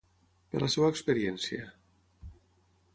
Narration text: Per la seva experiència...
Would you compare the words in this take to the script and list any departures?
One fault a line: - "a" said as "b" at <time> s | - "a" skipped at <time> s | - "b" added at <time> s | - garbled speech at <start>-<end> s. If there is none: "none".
none